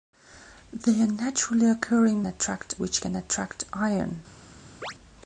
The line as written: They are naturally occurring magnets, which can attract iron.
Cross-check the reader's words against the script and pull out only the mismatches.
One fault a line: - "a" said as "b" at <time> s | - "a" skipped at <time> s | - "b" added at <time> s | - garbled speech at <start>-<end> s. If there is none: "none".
- "magnets" said as "attract" at 2.3 s